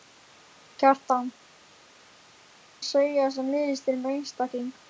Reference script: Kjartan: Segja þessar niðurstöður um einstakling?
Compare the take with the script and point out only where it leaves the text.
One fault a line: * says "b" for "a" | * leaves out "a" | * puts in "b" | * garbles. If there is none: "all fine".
all fine